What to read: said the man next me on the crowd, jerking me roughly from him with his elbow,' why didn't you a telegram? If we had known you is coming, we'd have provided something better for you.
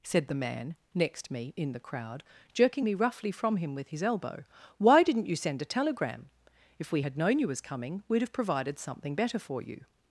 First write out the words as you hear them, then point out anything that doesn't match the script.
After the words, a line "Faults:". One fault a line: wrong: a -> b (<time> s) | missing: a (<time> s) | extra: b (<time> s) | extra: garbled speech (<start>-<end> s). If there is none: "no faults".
said the man next me in the crowd, jerking me roughly from him with his elbow,' why didn't you send a telegram? If we had known you was coming, we'd have provided something better for you.
Faults:
wrong: on -> in (1.6 s)
extra: send (5.3 s)
wrong: is -> was (7.5 s)